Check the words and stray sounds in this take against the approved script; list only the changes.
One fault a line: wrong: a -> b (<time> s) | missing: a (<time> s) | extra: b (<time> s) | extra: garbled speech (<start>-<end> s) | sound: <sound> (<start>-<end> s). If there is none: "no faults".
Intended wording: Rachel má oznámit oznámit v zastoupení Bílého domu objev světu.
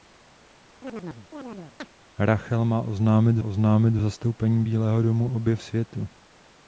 sound: chirp (0.8-1.9 s)